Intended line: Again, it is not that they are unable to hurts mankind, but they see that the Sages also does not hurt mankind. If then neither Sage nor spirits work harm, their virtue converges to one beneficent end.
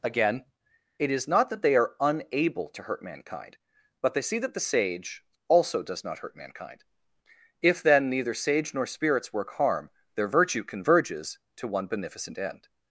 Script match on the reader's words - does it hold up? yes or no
no